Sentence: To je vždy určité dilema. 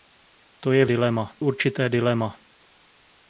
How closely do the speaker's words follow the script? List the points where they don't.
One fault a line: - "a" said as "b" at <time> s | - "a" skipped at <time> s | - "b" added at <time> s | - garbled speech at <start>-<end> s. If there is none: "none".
- "vždy" said as "dilema" at 0.8 s